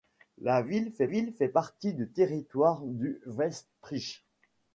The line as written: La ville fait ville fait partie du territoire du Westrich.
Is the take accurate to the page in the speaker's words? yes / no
yes